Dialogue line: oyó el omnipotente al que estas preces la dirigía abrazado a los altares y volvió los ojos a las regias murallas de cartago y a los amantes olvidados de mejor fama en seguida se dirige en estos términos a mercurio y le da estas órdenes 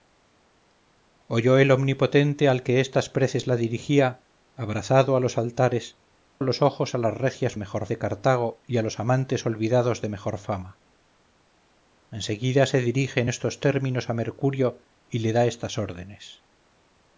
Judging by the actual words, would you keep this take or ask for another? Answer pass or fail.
fail